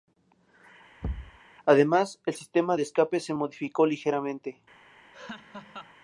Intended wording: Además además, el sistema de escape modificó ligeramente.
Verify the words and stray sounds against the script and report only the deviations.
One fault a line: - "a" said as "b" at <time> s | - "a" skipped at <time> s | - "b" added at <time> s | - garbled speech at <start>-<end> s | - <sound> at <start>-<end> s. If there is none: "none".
- thud at 1.0-1.4 s
- "además" skipped at 2.2 s
- "se" added at 3.2 s
- laugh at 5.1-6.0 s